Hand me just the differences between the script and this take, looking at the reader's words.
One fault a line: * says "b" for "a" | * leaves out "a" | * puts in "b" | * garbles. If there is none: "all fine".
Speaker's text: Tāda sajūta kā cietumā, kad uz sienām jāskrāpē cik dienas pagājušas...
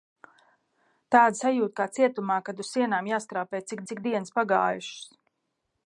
* puts in "cik"